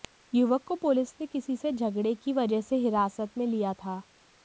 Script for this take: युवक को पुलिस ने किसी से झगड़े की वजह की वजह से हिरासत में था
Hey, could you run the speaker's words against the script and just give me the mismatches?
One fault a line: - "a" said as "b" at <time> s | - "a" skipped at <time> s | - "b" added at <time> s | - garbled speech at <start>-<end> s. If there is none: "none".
- "की वजह" skipped at 2.6 s
- "लिया" added at 3.5 s